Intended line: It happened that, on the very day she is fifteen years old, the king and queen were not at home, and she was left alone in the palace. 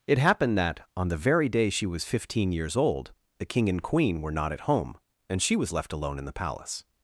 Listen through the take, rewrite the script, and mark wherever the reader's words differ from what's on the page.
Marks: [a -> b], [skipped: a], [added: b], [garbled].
It happened that, on the very day she [is -> was] fifteen years old, the king and queen were not at home, and she was left alone in the palace.